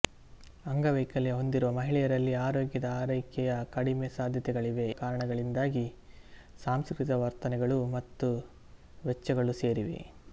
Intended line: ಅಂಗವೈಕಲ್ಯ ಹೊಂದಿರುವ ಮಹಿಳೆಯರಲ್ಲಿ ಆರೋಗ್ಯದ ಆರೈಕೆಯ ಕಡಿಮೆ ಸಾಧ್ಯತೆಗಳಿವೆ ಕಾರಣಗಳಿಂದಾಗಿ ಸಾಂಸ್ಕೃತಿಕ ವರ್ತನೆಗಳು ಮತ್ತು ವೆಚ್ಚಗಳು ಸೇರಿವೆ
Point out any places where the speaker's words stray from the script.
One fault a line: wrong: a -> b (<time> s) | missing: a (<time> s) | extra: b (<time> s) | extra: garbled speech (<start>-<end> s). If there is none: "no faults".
no faults